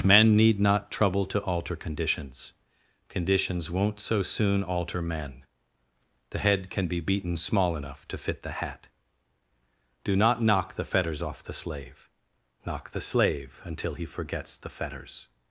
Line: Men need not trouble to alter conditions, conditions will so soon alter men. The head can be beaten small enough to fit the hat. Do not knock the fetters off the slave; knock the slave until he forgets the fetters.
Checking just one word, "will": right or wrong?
wrong